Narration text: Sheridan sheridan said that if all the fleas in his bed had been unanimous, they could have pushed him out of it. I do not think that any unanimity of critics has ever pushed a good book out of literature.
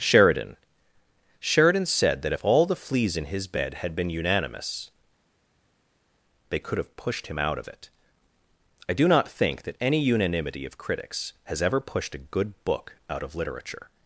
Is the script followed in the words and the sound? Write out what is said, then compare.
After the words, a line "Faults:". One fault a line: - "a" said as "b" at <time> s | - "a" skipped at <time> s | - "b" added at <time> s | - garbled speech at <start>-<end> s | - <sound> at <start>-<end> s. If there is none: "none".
Sheridan sheridan said that if all the fleas in his bed had been unanimous, they could have pushed him out of it. I do not think that any unanimity of critics has ever pushed a good book out of literature.
Faults:
none